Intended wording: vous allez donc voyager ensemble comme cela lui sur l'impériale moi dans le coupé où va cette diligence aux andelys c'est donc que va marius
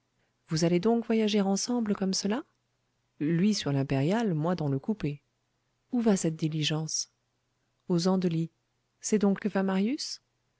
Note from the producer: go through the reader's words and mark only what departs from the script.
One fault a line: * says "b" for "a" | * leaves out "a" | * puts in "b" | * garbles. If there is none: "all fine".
all fine